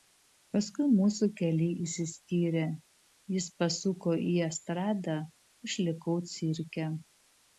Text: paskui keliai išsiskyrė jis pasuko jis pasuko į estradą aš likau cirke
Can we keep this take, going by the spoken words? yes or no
no